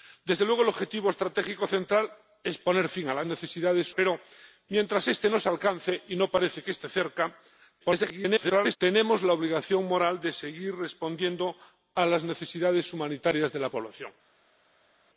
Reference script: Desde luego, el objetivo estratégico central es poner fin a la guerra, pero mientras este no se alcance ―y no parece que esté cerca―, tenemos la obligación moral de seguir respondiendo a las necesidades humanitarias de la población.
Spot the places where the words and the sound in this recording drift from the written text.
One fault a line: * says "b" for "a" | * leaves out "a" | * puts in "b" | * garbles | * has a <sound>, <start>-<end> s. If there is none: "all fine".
* says "necesidades" for "guerra"
* garbles